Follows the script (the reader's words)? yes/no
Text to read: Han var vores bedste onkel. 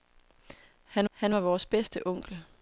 no